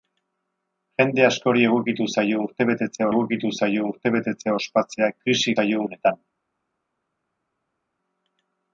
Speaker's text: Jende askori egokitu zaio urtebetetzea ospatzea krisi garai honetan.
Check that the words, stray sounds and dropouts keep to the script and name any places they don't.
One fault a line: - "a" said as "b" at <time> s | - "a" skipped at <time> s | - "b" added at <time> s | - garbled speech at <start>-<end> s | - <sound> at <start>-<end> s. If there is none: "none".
- "egokitu zaio urtebetetzea" added at 3.1 s
- "garai" said as "zaio" at 5.6 s